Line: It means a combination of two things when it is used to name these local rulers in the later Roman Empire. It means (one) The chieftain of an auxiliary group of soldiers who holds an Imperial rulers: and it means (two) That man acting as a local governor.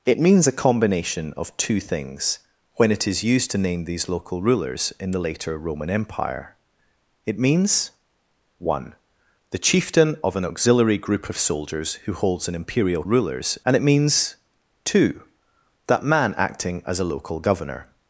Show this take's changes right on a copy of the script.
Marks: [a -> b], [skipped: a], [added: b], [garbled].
It means a combination of two things when it is used to name these local rulers in the later Roman Empire. It means (one) The chieftain of an auxiliary group of soldiers who holds an Imperial rulers: and it means (two) That man acting as a local governor.